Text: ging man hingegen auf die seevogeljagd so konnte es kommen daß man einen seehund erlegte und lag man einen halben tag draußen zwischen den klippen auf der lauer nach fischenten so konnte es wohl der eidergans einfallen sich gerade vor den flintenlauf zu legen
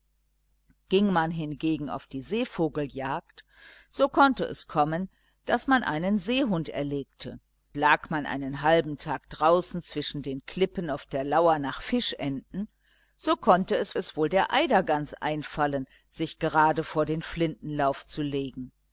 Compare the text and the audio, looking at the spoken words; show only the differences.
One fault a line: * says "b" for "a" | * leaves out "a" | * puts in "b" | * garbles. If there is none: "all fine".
* leaves out "und"
* puts in "es"